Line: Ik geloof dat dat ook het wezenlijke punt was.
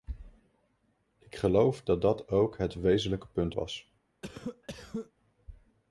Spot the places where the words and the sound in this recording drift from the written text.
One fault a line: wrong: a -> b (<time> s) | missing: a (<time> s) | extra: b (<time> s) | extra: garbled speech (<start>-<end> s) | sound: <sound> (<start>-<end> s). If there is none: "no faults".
sound: cough (4.2-5.1 s)